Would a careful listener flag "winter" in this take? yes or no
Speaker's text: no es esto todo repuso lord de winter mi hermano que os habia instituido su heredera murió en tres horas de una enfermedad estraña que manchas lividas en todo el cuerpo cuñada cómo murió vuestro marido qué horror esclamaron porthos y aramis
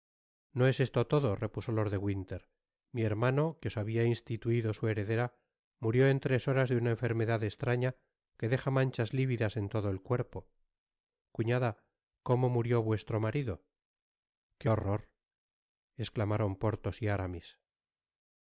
no